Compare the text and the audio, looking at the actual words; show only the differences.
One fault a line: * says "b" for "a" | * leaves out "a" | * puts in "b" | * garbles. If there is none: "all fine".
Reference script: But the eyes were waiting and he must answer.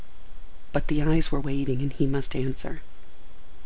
all fine